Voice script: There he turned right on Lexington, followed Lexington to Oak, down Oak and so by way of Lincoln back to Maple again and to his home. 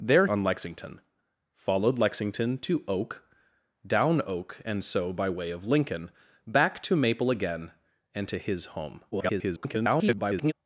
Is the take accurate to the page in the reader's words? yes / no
no